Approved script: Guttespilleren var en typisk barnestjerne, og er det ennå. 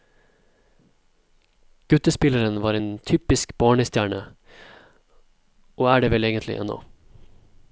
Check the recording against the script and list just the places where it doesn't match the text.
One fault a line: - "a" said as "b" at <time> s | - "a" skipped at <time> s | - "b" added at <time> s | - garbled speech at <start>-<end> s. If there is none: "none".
- "vel egentlig" added at 6.1 s